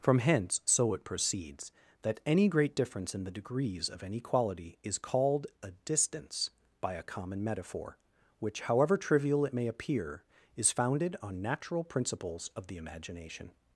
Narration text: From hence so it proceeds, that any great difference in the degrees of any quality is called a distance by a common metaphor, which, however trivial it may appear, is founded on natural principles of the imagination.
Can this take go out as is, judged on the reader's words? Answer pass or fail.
pass